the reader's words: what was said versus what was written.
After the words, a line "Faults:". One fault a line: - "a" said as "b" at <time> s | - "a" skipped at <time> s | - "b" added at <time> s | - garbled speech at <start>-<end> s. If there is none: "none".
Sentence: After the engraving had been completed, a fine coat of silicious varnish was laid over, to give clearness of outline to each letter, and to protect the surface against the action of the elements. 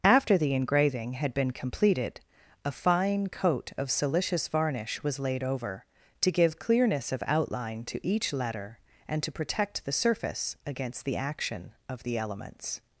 After the engraving had been completed, a fine coat of silicious varnish was laid over, to give clearness of outline to each letter, and to protect the surface against the action of the elements.
Faults:
none